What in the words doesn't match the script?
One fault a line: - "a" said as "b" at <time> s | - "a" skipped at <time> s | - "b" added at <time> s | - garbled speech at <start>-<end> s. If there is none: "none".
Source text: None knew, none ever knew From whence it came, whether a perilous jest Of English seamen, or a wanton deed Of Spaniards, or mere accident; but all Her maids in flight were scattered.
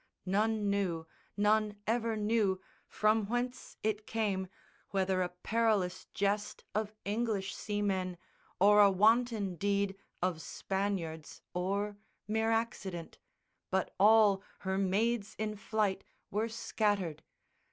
none